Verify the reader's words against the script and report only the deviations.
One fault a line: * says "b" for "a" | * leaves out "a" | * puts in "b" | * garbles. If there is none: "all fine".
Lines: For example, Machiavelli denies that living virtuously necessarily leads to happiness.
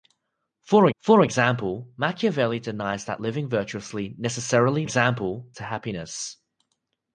* puts in "for"
* says "example" for "leads"